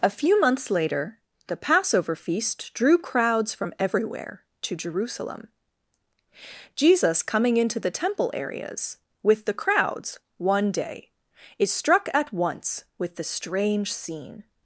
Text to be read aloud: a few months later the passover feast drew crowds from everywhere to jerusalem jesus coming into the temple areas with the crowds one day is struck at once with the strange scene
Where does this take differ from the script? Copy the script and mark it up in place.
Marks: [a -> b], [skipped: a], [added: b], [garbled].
a few months later the passover feast drew crowds from everywhere to jerusalem jesus coming into the temple areas with the crowds one day is struck at once with the strange scene